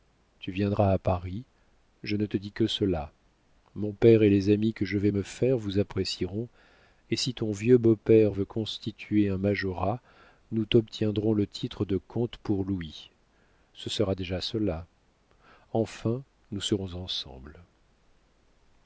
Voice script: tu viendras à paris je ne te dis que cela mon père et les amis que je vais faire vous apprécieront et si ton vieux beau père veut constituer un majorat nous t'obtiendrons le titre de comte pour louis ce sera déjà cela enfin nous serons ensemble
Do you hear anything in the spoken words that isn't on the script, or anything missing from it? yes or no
yes